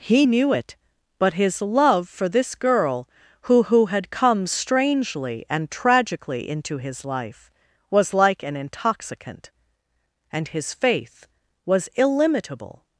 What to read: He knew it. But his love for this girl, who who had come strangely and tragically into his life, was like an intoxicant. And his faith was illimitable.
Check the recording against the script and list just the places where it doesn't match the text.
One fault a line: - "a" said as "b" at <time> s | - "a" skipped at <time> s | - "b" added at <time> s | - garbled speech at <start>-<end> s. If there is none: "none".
none